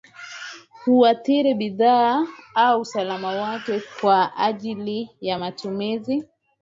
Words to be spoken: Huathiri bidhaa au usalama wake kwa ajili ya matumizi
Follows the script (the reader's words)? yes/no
yes